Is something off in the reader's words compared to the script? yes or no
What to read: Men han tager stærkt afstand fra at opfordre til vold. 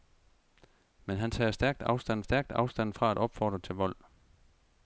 yes